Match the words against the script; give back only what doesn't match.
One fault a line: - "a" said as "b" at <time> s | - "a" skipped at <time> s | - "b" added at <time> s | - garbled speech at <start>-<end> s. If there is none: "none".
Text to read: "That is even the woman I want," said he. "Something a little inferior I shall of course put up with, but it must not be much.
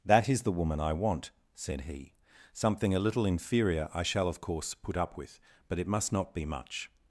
- "even" skipped at 0.4 s